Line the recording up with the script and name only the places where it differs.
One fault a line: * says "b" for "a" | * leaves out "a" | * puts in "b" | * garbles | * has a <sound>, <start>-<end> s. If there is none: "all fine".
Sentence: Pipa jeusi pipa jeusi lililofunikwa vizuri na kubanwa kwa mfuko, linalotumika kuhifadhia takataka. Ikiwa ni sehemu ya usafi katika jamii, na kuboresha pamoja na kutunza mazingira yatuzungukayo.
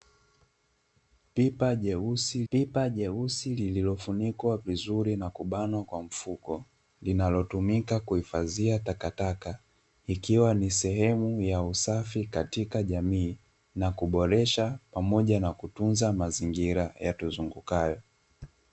all fine